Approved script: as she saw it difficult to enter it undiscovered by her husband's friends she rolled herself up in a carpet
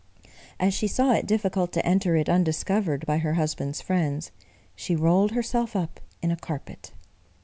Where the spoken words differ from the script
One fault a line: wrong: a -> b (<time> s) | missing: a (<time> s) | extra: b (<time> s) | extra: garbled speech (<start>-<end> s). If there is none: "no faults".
no faults